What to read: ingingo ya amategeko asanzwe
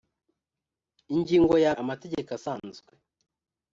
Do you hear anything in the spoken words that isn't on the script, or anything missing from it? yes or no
no